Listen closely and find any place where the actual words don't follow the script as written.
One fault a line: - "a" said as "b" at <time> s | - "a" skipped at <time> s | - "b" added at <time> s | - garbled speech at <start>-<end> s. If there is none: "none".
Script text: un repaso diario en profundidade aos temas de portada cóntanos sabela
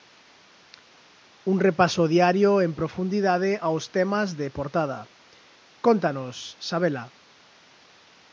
none